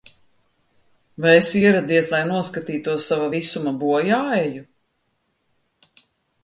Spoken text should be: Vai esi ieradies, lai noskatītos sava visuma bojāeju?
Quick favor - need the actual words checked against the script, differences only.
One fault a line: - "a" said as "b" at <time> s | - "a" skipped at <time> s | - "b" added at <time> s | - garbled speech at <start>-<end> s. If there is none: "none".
none